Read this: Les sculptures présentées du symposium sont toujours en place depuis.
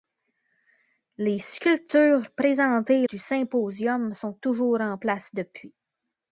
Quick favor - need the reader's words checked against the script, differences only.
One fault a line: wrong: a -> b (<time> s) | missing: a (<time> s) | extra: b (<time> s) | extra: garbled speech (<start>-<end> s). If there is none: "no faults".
no faults